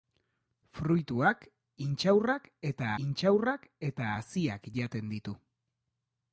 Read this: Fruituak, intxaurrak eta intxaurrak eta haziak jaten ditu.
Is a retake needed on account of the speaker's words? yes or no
no